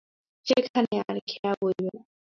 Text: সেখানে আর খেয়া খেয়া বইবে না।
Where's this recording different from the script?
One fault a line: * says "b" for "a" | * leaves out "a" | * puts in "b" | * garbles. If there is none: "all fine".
* leaves out "খেয়া"